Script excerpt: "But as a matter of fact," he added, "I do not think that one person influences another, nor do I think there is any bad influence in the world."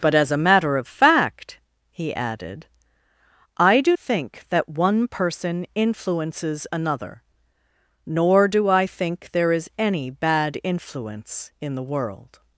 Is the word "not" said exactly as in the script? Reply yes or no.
no